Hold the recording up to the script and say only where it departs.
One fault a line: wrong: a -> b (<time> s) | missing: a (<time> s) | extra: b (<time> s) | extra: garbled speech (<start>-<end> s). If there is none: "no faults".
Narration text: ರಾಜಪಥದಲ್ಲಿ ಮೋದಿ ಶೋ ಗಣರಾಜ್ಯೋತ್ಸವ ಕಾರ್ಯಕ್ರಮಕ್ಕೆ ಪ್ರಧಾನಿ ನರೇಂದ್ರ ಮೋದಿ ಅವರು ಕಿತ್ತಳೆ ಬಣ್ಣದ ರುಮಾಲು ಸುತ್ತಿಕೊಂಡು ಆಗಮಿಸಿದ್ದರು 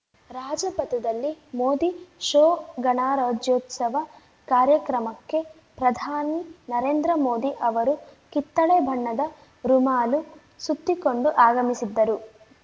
no faults